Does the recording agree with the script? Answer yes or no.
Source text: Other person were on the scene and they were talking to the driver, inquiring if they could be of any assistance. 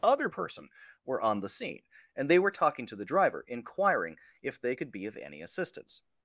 yes